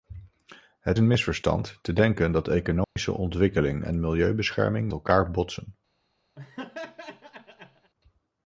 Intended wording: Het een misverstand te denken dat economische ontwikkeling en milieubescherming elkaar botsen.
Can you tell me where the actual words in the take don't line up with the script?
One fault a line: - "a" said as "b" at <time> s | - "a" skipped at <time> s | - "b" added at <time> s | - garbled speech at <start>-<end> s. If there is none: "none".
none